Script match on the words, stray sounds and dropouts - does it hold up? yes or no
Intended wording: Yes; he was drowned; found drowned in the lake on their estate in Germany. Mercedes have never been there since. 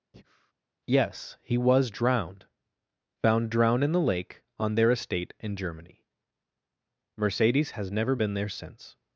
no